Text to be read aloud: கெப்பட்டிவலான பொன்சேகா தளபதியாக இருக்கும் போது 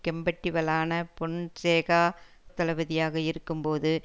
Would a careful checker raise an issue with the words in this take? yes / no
no